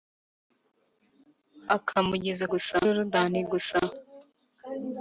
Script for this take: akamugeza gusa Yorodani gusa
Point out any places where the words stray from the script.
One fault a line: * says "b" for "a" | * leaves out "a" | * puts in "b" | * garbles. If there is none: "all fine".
all fine